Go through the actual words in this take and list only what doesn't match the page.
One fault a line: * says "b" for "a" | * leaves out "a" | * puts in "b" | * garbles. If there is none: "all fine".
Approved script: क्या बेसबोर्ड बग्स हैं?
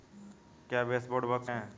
all fine